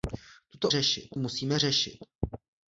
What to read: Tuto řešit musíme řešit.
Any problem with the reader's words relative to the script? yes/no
no